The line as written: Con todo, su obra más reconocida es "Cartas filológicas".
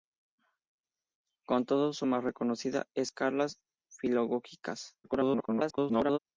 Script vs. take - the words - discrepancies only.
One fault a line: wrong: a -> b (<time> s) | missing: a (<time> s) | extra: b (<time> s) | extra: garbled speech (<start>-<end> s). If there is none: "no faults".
missing: obra (2.1 s)
extra: garbled speech (5.0-6.2 s)